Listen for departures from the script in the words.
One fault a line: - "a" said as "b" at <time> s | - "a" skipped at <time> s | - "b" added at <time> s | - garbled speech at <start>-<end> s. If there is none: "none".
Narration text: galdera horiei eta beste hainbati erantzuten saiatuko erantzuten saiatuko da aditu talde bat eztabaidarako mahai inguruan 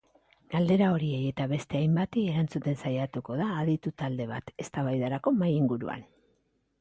- "erantzuten saiatuko" skipped at 3.4 s